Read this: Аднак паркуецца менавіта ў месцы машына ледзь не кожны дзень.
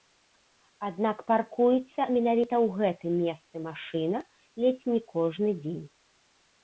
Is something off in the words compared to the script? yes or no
yes